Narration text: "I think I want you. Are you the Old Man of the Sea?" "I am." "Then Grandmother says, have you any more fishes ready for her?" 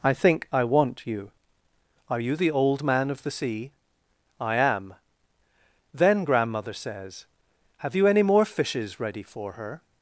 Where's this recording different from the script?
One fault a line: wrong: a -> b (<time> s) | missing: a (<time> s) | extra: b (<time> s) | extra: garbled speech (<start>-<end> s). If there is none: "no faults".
no faults